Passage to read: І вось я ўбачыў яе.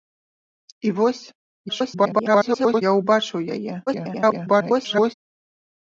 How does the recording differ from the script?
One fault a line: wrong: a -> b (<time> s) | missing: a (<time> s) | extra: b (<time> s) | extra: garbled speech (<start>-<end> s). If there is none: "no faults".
extra: garbled speech (1.7-2.8 s)
extra: garbled speech (3.9-5.1 s)